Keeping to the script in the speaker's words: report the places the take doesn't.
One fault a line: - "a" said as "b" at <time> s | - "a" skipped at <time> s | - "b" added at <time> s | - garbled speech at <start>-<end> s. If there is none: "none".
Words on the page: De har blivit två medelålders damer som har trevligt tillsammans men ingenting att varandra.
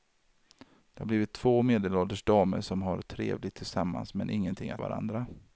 none